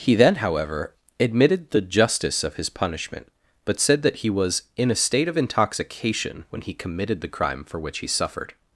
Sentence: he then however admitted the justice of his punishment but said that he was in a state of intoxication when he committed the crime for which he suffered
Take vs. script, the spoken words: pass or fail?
pass